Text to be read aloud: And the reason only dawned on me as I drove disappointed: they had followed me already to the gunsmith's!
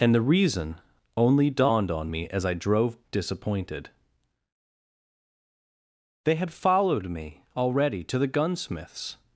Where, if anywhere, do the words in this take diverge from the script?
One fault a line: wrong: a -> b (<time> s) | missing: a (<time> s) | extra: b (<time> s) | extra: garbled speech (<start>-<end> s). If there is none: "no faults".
no faults